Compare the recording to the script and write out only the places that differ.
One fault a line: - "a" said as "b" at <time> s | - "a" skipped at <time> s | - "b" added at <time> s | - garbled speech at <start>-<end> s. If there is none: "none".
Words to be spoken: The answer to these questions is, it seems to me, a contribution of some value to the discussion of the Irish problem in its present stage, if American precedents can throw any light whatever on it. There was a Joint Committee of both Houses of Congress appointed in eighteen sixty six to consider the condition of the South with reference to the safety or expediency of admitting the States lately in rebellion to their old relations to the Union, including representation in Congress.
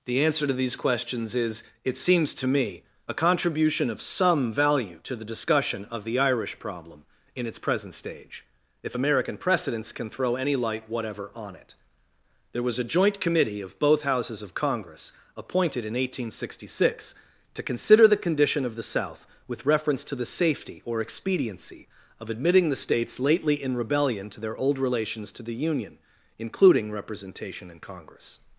none